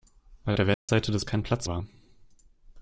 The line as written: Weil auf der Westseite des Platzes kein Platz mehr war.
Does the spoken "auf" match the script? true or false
false